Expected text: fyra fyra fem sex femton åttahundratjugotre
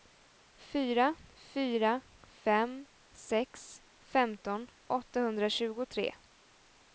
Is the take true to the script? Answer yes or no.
yes